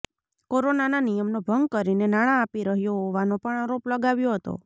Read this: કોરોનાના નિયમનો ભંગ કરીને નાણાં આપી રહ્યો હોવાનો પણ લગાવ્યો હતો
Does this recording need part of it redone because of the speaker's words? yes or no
yes